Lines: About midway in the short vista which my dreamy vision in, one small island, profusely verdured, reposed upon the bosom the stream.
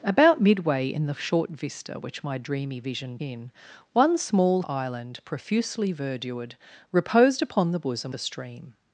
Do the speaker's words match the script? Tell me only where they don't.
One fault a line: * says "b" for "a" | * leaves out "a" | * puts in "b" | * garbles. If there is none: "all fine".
all fine